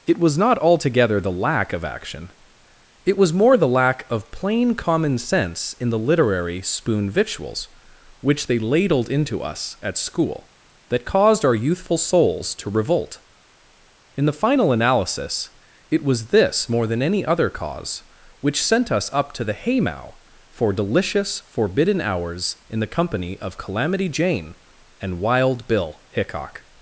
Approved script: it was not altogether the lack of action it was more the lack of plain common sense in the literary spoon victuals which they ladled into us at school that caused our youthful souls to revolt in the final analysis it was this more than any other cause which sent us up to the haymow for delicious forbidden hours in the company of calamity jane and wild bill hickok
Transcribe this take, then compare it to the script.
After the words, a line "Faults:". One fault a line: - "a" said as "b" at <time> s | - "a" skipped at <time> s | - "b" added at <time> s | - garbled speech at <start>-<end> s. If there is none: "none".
it was not altogether the lack of action it was more the lack of plain common sense in the literary spoon victuals which they ladled into us at school that caused our youthful souls to revolt in the final analysis it was this more than any other cause which sent us up to the haymow for delicious forbidden hours in the company of calamity jane and wild bill hickok
Faults:
none